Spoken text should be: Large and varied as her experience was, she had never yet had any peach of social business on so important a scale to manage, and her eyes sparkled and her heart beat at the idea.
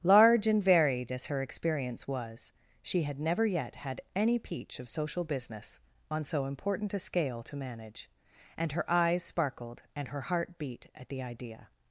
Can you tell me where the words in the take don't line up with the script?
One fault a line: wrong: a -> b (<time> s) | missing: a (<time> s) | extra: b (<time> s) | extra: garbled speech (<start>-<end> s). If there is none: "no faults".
no faults